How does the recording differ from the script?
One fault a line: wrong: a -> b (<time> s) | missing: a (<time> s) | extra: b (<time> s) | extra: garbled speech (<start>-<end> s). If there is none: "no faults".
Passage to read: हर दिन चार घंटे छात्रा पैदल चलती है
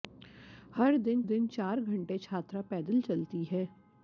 extra: दिन (1.2 s)